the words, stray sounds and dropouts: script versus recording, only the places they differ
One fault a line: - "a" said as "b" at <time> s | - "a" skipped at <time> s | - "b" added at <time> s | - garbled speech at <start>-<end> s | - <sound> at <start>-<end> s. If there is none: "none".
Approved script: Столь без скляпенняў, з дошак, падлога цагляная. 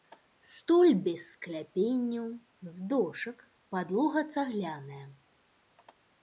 none